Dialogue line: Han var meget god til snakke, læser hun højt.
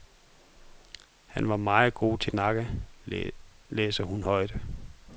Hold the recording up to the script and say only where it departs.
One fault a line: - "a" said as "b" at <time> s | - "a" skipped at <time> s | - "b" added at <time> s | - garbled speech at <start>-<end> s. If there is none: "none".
none